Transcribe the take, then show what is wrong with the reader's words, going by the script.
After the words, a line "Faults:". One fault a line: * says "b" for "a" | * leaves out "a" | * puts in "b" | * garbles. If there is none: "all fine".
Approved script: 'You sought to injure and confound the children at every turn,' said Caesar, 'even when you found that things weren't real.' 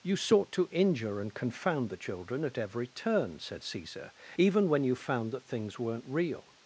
'You sought to injure and confound the children at every turn,' said Caesar, 'even when you found that things weren't real.'
Faults:
all fine